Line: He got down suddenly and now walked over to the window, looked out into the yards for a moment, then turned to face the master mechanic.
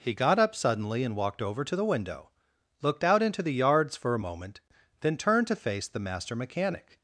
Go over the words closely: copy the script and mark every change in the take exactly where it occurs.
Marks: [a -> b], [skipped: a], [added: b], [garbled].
He got [down -> up] suddenly and [skipped: now] walked over to the window, looked out into the yards for a moment, then turned to face the master mechanic.